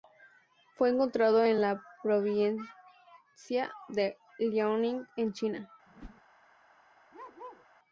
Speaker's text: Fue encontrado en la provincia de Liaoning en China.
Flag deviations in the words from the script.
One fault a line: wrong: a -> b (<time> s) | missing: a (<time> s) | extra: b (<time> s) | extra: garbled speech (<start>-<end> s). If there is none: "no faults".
no faults